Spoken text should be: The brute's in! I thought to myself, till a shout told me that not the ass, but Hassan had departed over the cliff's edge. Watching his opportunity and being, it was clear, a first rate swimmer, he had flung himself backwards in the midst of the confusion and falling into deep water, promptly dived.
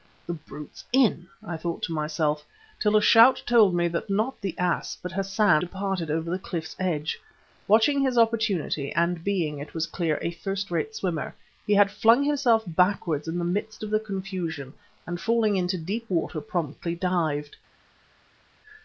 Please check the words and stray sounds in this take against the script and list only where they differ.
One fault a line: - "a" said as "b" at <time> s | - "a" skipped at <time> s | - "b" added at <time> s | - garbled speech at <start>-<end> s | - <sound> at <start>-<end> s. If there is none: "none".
- "had" skipped at 5.6 s